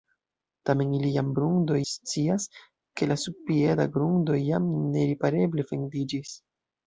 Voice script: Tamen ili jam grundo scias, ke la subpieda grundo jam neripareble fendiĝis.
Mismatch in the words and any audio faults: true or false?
false